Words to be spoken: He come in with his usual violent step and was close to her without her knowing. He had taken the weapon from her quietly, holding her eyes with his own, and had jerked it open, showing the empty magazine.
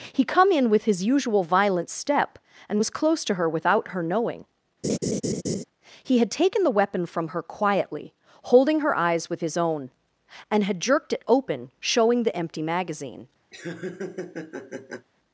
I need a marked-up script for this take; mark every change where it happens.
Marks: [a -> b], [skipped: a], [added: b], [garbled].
He come in with his usual violent step and was close to her without her knowing. He had taken the weapon from her quietly, holding her eyes with his own, and had jerked it open, showing the empty magazine.